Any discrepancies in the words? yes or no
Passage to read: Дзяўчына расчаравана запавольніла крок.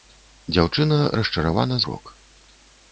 yes